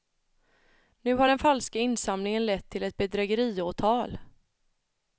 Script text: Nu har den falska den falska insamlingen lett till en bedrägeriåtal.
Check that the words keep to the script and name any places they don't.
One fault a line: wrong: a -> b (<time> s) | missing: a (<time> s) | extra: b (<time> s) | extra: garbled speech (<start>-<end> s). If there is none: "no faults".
missing: den falska (1.8 s)
wrong: en -> ett (2.8 s)